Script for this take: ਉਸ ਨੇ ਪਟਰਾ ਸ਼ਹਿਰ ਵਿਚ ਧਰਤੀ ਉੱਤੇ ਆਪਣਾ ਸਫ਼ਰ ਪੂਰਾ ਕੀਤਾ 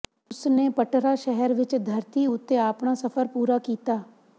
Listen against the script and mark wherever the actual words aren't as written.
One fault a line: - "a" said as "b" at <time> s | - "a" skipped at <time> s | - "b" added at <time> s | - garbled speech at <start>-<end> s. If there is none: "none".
none